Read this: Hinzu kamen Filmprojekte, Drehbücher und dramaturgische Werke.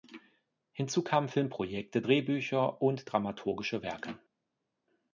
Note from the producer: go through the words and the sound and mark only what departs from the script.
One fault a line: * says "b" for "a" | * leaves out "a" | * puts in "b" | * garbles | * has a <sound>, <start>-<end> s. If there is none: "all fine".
all fine